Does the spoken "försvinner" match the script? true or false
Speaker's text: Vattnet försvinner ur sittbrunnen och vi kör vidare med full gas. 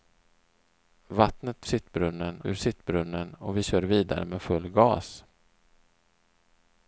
false